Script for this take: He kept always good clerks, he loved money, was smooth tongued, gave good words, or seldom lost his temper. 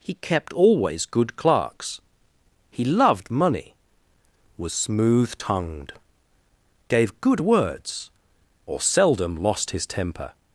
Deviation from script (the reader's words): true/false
false